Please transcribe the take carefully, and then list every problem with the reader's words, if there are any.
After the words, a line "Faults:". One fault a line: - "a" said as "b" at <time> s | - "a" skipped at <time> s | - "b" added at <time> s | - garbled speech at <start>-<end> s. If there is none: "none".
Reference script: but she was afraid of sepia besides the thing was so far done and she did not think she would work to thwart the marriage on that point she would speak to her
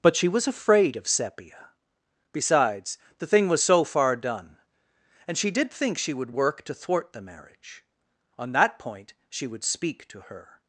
but she was afraid of sepia besides the thing was so far done and she did think she would work to thwart the marriage on that point she would speak to her
Faults:
- "not" skipped at 5.7 s